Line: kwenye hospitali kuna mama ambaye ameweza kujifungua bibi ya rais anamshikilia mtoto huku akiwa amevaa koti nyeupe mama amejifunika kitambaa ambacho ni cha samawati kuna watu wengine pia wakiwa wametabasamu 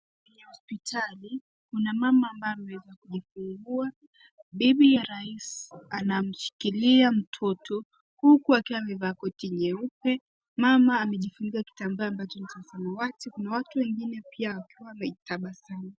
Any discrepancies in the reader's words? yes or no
no